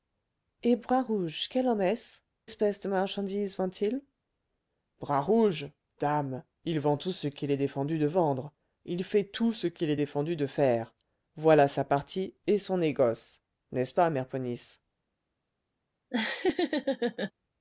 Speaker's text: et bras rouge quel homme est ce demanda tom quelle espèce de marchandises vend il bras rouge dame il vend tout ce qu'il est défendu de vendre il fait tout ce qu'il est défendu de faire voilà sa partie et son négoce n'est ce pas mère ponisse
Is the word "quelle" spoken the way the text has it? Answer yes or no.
no